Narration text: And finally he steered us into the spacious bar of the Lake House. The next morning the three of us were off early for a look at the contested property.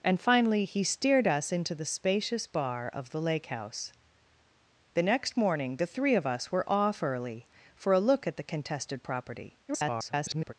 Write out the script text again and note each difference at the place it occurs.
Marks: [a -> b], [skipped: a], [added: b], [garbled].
And finally he steered us into the spacious bar of the Lake House. The next morning the three of us were off early for a look at the contested property. [garbled]